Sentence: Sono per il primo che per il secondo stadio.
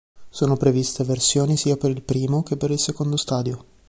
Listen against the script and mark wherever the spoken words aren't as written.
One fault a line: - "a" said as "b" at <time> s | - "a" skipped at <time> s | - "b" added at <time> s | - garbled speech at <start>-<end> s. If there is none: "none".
- "previste versioni sia" added at 0.6 s